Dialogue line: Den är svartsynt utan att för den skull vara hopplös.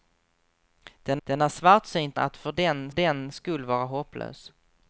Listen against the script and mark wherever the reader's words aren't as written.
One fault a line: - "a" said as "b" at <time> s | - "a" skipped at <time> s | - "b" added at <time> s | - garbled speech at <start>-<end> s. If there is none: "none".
- "den" added at 1.2 s
- "utan" skipped at 2.2 s
- "den" added at 2.9 s